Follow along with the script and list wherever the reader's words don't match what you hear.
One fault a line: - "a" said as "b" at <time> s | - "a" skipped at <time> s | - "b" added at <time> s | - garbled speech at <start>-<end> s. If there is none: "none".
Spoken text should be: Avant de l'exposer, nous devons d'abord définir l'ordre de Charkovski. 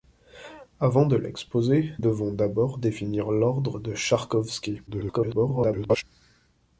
- "nous" skipped at 1.9 s
- garbled speech at 4.9-6.0 s